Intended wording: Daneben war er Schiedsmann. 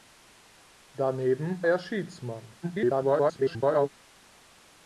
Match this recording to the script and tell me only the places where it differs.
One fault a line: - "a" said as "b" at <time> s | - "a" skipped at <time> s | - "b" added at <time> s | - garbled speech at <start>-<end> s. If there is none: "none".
- "war" skipped at 1.6 s
- garbled speech at 2.6-3.9 s